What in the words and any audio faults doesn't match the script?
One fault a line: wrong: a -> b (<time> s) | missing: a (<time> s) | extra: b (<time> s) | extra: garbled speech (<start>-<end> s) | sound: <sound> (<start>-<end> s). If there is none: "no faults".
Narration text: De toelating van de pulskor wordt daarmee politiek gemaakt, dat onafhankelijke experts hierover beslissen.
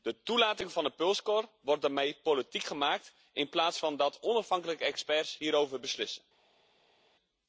extra: in plaats van (3.3 s)